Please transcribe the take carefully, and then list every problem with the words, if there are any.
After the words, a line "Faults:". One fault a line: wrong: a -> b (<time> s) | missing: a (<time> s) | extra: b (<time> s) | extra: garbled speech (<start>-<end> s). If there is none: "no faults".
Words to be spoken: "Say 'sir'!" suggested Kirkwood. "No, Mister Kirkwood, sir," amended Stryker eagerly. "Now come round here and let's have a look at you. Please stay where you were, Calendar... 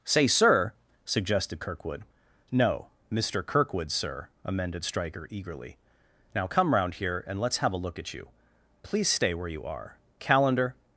"Say 'sir'!" suggested Kirkwood. "No, Mister Kirkwood, sir," amended Stryker eagerly. "Now come round here and let's have a look at you. Please stay where you are, Calendar...
Faults:
wrong: were -> are (9.6 s)